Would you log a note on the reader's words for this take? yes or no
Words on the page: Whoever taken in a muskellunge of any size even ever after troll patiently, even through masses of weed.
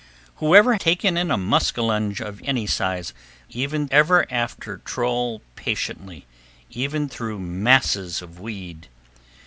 no